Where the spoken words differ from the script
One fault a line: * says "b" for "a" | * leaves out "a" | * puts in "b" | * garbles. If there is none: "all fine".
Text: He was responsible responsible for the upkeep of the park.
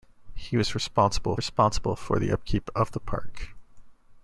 all fine